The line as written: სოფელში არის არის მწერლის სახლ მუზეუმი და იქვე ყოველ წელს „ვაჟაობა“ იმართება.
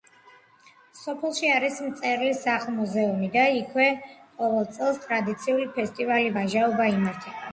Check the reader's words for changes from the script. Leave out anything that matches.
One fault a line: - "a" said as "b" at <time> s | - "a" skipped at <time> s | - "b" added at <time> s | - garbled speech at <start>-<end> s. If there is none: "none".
- "არის" skipped at 1.8 s
- "ტრადიციული ფესტივალი" added at 5.0 s